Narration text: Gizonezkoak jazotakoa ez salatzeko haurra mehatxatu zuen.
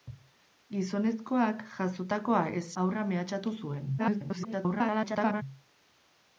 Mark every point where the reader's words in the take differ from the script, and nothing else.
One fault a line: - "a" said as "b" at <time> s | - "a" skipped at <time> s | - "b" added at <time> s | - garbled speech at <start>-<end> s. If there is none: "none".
- "salatzeko" skipped at 2.6 s
- garbled speech at 4.0-5.4 s